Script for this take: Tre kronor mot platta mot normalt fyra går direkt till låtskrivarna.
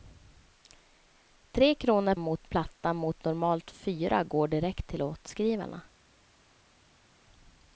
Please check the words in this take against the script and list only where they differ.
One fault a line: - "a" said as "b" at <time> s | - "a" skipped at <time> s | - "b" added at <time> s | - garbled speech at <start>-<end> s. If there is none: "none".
none